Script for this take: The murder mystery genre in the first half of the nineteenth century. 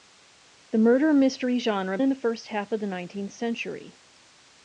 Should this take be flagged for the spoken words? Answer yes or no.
no